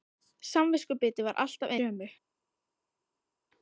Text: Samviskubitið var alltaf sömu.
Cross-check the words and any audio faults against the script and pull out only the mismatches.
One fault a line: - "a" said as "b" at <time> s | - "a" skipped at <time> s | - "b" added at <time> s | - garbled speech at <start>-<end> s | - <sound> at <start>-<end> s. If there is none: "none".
none